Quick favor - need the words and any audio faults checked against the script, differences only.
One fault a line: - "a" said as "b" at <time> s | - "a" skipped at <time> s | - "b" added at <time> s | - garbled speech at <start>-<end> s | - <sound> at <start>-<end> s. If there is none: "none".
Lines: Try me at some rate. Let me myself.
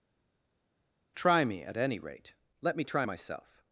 - "some" said as "any" at 1.8 s
- "try" added at 2.8 s